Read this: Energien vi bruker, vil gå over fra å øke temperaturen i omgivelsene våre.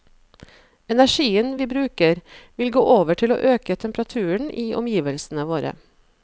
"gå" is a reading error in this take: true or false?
false